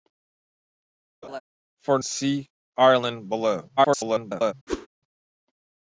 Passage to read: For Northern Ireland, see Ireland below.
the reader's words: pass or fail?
fail